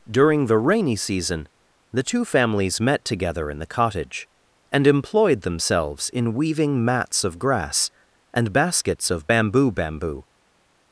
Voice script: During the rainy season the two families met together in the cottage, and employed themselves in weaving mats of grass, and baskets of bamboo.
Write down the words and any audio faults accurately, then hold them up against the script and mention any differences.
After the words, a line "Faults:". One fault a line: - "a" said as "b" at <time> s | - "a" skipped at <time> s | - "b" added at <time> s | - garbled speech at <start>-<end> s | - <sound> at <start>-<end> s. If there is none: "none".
During the rainy season the two families met together in the cottage, and employed themselves in weaving mats of grass, and baskets of bamboo bamboo.
Faults:
- "bamboo" added at 9.7 s